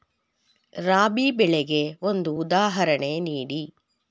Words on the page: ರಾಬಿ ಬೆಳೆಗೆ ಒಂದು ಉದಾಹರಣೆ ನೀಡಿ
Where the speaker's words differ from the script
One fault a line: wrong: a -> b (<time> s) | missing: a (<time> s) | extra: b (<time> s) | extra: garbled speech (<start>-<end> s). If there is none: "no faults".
no faults